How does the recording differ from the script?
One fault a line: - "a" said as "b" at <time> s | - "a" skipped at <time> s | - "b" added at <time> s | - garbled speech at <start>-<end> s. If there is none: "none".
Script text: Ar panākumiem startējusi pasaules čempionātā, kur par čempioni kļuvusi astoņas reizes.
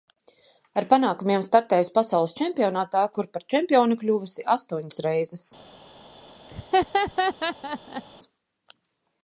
none